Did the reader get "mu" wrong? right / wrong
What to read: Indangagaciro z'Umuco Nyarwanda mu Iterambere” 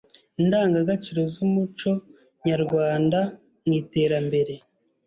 right